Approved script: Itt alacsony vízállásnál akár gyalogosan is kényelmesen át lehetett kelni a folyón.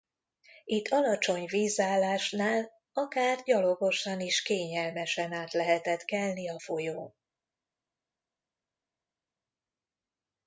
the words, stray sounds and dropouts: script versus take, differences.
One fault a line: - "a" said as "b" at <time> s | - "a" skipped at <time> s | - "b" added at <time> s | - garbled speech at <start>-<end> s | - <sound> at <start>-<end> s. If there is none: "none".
none